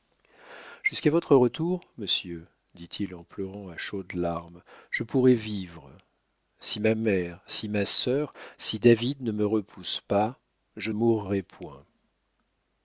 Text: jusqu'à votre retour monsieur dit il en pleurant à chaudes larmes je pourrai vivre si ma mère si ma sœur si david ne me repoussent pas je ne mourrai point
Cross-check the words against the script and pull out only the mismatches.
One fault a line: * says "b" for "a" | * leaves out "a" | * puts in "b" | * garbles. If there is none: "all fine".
* leaves out "ne"